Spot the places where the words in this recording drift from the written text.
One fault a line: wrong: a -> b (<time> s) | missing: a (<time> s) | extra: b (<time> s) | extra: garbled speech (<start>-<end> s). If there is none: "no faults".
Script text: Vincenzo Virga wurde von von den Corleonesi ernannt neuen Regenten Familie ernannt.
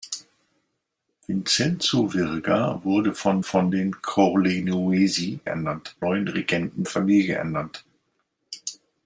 no faults